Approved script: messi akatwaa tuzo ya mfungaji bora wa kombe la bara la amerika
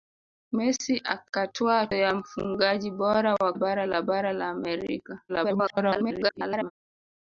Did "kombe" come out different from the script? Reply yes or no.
yes